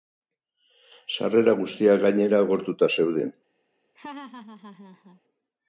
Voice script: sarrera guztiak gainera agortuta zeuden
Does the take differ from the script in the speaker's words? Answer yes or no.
no